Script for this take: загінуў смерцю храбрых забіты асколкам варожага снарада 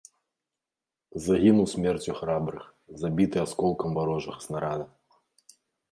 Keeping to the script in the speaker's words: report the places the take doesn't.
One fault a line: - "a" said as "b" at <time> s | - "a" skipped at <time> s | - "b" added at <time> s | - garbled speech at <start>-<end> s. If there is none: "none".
none